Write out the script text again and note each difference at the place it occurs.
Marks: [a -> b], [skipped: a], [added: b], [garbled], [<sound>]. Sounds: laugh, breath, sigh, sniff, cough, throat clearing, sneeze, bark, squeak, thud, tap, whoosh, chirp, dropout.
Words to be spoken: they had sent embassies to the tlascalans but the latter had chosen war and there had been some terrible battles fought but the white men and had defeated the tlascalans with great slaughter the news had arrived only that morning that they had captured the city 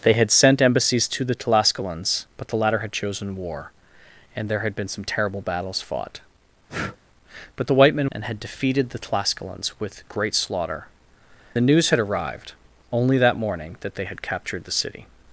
they had sent embassies to the tlascalans but the latter had chosen war and there had been some terrible battles fought [breath] but the white men and had defeated the tlascalans with great slaughter the news had arrived only that morning that they had captured the city